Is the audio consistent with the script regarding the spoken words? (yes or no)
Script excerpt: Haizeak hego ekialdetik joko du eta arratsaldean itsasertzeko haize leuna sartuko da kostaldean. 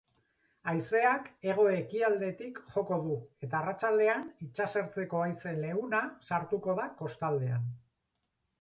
yes